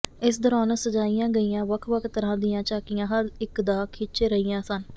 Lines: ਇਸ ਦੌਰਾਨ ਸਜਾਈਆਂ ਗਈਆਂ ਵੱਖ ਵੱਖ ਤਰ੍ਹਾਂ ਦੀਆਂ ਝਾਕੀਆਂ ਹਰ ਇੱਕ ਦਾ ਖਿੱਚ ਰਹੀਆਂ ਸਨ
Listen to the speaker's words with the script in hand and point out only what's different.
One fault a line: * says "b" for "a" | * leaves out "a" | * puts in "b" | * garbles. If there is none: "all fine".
all fine